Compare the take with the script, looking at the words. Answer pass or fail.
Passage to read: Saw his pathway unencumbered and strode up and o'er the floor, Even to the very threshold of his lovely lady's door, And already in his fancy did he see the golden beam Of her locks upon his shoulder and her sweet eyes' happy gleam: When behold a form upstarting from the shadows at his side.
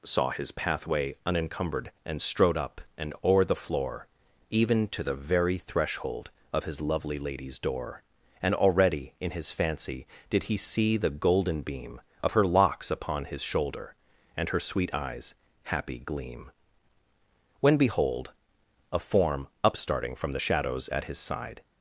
pass